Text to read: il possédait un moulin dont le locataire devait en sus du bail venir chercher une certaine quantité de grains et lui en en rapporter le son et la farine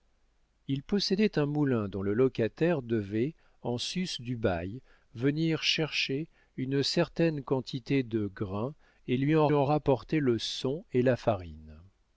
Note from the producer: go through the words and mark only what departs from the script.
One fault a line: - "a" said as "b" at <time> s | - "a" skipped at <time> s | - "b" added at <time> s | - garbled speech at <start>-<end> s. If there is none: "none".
none